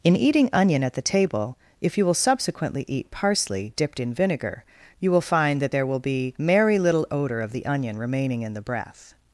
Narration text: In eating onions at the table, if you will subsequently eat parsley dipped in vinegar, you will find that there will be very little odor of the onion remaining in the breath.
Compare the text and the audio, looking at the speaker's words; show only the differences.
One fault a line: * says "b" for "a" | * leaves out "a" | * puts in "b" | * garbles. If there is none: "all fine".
* says "onion" for "onions"
* says "merry" for "very"